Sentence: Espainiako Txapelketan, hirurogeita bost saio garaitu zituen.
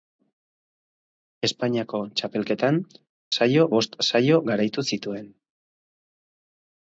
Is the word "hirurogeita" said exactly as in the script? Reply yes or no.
no